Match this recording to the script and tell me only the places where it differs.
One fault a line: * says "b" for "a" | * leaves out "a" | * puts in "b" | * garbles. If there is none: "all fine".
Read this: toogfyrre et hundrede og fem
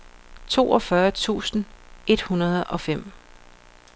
* puts in "tusind"